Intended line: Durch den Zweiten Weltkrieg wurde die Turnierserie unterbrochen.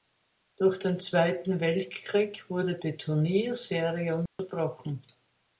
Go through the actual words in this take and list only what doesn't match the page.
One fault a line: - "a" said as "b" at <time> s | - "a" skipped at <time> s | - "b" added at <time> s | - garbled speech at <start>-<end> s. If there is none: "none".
none